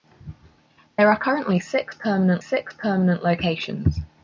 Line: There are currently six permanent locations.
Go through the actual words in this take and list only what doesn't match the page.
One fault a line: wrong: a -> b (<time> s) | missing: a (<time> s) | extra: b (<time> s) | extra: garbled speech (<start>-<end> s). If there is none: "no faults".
extra: six permanent (2.4 s)